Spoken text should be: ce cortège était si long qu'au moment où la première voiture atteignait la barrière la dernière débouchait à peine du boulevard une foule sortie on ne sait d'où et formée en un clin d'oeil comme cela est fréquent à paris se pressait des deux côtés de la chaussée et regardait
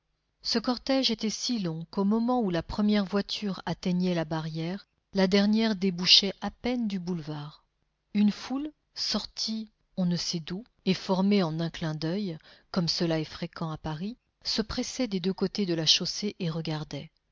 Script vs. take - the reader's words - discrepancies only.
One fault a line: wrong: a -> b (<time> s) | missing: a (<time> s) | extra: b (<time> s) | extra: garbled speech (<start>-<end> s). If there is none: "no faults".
no faults